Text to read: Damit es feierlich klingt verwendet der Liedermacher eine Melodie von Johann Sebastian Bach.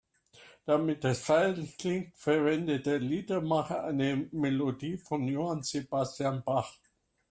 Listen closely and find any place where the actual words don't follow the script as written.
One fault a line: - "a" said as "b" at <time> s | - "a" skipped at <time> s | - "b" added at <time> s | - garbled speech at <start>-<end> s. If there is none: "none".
none